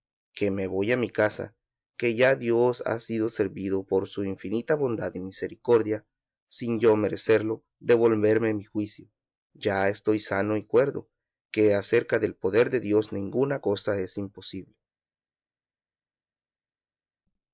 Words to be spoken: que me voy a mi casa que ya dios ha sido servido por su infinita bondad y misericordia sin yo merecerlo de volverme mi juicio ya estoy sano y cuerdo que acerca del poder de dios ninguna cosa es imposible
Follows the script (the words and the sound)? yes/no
yes